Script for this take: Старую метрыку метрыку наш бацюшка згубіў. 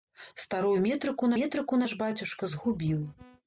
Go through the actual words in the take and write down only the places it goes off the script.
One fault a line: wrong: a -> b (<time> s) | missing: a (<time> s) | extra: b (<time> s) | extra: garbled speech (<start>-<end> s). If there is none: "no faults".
no faults